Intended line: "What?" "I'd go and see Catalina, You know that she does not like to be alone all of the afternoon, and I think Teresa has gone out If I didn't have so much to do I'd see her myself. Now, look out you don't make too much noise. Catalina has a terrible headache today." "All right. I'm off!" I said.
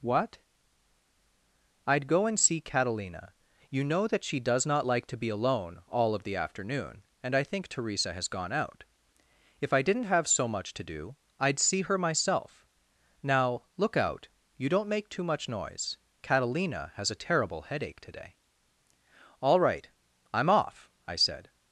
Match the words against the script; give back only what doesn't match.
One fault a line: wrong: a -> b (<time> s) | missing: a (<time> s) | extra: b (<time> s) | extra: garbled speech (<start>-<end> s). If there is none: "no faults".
no faults